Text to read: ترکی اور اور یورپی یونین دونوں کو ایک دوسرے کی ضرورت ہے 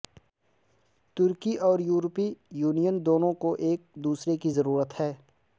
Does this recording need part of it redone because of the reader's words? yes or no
yes